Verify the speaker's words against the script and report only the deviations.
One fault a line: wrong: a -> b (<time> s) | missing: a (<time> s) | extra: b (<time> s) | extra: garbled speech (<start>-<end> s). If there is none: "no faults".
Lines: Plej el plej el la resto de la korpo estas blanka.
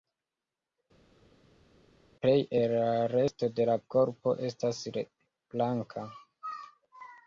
missing: plej el (2.7 s)